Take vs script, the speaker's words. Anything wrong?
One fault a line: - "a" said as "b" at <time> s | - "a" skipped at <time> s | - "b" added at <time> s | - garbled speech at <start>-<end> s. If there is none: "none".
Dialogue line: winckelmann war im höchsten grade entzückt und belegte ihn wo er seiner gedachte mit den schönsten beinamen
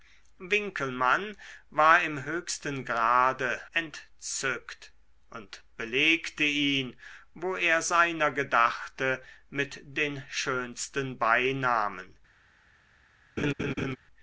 none